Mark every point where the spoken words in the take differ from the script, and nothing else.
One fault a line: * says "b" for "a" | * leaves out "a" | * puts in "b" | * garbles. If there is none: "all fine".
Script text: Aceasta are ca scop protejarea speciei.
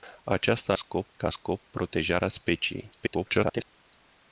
* says "scop" for "are"
* garbles